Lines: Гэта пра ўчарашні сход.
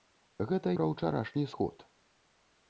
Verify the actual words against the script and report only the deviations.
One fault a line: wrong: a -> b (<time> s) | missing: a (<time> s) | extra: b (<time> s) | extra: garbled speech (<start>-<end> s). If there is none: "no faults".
no faults